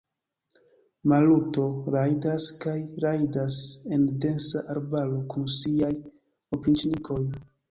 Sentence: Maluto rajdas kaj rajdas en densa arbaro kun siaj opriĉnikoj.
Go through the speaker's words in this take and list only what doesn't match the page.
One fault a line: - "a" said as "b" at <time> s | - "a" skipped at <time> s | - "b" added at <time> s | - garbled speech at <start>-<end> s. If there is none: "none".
none